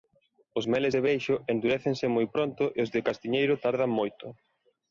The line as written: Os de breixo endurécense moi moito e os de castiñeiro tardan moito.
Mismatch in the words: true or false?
true